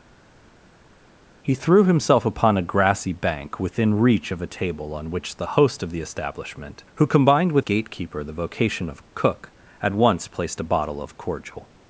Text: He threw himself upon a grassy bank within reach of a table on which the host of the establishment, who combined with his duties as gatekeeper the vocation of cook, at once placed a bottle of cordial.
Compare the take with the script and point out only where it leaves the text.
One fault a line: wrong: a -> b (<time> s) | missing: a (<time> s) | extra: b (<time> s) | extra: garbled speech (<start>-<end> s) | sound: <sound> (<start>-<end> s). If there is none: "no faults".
missing: his duties as (7.7 s)